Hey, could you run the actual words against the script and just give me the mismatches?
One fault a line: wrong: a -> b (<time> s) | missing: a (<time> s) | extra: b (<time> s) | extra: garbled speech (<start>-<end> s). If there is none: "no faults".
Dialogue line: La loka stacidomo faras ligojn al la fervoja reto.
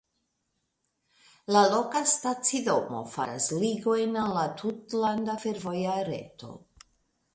extra: tutlanda (4.6 s)